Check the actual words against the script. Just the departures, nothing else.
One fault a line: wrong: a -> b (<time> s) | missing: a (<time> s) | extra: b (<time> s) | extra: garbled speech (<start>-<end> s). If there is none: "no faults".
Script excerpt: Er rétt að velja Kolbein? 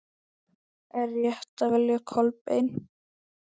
no faults